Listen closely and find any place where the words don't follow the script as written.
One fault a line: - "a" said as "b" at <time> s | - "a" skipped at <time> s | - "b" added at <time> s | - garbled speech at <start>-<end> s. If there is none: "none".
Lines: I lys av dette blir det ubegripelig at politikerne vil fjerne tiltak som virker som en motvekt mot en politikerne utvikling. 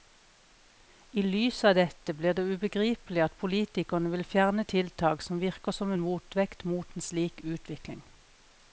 - "politikerne" said as "slik" at 7.1 s